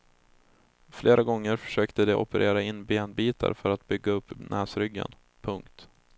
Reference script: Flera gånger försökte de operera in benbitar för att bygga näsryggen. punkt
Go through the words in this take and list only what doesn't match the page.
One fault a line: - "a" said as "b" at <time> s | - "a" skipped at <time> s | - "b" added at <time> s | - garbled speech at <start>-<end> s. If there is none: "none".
- "upp" added at 4.1 s